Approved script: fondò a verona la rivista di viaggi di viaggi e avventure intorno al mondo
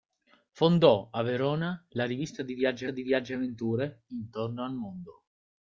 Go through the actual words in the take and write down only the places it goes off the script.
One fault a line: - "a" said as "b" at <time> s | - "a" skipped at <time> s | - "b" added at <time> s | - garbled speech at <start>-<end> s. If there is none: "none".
none